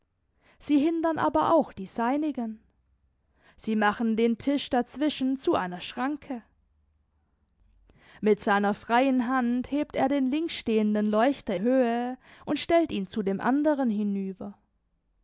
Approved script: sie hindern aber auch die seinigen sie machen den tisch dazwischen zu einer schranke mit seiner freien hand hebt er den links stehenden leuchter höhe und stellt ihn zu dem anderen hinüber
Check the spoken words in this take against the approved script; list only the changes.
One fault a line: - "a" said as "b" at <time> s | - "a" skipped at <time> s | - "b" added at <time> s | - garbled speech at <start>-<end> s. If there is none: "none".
none